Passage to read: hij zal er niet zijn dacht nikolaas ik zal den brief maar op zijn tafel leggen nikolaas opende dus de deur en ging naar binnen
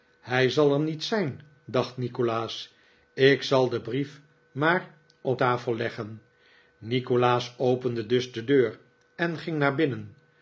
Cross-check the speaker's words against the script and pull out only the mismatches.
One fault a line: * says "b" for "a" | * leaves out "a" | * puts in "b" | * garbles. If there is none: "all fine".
* leaves out "zijn"